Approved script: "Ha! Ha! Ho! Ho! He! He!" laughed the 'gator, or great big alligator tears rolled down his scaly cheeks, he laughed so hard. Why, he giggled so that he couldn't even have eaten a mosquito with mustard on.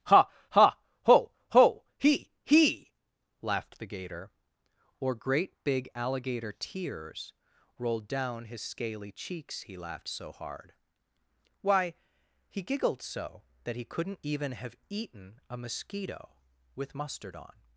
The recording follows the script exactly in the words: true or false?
true